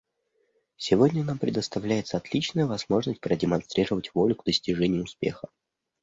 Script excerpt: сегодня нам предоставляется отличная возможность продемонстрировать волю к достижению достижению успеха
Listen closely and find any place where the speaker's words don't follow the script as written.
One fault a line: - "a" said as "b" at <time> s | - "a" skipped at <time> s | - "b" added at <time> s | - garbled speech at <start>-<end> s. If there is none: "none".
- "достижению" skipped at 5.0 s